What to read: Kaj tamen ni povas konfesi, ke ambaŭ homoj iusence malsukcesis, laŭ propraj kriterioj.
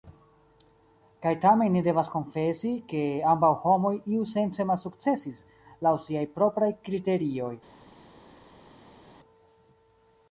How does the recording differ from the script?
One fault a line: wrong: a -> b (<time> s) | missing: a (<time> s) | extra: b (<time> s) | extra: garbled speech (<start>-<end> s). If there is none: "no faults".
wrong: povas -> devas (1.9 s)
extra: siaj (6.1 s)